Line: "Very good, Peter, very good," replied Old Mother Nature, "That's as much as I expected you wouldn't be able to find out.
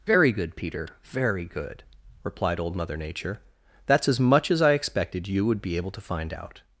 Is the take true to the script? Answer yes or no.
no